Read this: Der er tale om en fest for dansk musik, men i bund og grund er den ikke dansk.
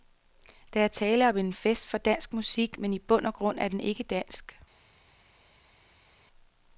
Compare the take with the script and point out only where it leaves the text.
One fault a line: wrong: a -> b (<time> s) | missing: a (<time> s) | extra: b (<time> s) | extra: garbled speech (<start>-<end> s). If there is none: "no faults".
no faults